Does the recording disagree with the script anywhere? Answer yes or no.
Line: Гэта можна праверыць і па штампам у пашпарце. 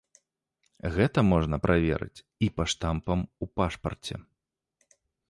no